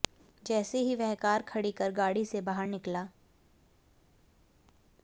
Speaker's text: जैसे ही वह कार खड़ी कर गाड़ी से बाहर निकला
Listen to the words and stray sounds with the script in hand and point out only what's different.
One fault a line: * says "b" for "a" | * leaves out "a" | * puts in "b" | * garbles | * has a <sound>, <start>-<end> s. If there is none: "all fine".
all fine